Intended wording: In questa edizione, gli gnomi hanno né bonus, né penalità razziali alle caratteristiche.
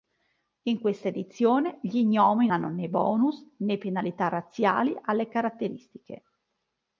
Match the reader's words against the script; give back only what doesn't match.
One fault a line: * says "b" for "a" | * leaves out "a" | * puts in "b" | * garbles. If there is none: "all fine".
all fine